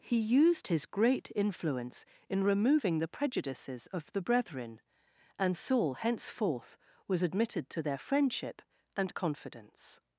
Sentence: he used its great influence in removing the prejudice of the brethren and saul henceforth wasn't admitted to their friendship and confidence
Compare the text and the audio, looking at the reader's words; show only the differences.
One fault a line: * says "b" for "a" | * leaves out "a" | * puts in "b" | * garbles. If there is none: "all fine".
* says "his" for "its"
* says "prejudices" for "prejudice"
* says "was" for "wasn't"